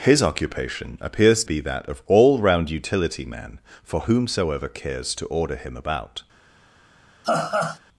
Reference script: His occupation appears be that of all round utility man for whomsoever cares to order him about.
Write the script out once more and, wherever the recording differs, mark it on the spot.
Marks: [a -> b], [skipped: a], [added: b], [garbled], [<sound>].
His occupation appears be that of all round utility man for whomsoever cares to order him about. [laugh]